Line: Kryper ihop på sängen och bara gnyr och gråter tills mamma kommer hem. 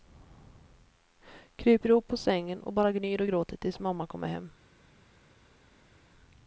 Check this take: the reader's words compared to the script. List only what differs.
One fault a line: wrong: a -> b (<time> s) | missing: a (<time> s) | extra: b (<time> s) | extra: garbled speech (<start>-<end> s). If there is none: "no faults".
no faults